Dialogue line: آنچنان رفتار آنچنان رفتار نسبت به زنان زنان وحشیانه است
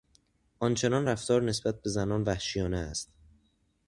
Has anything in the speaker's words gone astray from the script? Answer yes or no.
yes